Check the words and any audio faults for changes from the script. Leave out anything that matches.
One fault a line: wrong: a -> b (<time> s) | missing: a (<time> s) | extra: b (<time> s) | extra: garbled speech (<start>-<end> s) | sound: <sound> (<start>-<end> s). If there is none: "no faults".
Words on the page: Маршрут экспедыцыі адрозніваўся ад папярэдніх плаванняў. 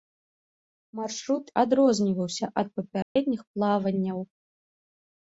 missing: экспедыцыі (1.4 s)
sound: dropout (3.0-3.2 s)